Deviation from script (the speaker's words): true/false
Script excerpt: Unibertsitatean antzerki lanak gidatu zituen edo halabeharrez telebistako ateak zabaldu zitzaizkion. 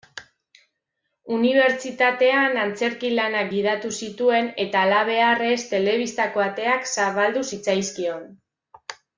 true